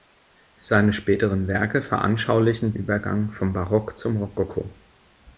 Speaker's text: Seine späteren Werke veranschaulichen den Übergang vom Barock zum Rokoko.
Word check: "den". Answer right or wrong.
wrong